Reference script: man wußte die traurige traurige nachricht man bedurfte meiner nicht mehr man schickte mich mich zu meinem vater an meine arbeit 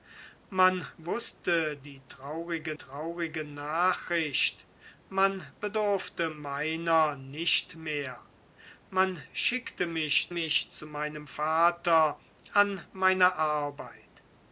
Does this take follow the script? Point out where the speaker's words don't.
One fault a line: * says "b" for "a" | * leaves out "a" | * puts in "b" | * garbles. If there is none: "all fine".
all fine